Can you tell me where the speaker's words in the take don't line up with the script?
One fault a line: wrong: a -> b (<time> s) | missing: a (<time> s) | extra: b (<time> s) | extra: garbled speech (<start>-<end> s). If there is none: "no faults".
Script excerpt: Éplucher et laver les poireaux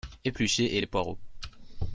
missing: laver (0.8 s)